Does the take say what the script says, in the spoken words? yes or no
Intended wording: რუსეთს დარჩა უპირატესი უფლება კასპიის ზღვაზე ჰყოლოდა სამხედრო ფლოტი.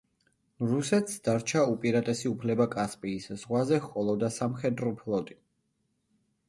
yes